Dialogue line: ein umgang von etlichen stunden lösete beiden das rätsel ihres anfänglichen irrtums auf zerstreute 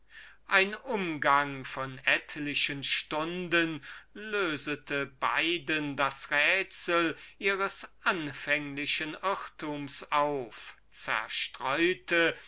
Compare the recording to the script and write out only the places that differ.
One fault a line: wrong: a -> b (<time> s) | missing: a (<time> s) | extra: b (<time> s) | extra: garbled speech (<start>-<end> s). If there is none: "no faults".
no faults